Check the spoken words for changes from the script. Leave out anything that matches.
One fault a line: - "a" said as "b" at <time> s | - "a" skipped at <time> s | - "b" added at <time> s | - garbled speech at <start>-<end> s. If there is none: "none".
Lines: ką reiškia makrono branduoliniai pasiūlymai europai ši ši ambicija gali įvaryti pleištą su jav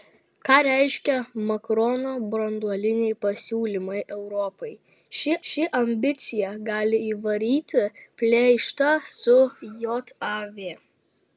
none